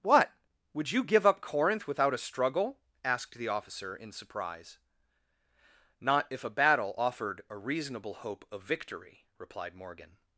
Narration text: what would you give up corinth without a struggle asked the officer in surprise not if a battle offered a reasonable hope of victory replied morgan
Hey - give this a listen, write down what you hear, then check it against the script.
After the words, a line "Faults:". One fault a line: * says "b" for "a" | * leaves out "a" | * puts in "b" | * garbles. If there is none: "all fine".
what would you give up corinth without a struggle asked the officer in surprise not if a battle offered a reasonable hope of victory replied morgan
Faults:
all fine